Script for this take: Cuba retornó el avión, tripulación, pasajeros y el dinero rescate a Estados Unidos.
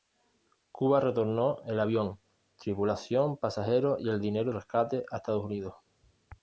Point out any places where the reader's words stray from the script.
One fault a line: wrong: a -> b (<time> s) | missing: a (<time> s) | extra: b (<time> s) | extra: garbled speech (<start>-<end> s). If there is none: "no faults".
no faults